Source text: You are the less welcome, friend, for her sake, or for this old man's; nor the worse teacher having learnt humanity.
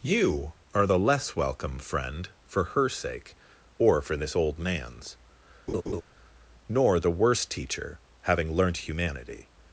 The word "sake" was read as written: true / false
true